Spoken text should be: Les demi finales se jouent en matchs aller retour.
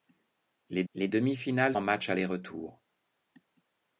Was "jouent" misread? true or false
true